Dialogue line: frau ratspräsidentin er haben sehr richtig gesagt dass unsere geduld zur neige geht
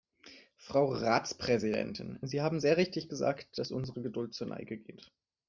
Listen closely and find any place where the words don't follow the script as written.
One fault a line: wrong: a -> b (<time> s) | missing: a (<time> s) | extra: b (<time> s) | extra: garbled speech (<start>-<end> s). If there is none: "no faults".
wrong: er -> sie (2.2 s)